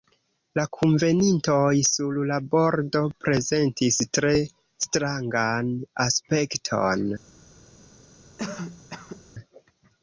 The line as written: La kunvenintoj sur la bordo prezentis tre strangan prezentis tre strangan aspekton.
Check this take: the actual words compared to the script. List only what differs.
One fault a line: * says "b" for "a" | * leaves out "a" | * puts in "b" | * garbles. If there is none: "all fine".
* leaves out "prezentis tre strangan"